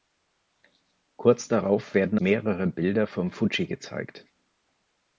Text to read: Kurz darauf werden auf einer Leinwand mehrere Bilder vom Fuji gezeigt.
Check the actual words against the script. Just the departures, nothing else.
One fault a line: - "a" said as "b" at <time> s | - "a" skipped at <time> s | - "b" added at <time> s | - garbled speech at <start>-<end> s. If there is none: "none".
- "auf einer Leinwand" skipped at 2.2 s